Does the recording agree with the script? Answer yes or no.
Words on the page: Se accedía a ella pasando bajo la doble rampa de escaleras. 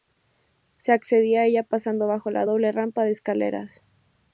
yes